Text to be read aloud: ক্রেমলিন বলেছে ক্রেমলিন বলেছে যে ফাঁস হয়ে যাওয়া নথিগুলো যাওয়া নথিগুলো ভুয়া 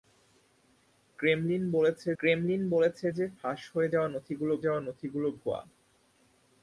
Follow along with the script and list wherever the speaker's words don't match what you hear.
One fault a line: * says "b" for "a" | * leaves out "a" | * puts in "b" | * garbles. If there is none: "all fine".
all fine